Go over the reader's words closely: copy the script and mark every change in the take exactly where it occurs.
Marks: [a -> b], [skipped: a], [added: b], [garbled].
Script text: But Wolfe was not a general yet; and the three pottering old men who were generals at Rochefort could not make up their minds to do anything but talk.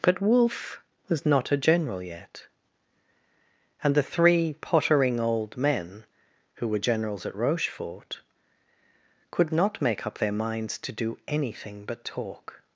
But Wolfe was not a general yet; and the three pottering old men who were generals at Rochefort could not make up their minds to do anything but talk.